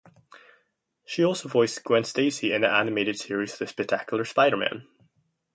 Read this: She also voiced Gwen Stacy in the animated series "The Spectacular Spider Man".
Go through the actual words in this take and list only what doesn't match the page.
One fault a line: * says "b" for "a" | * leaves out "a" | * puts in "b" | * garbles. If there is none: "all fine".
all fine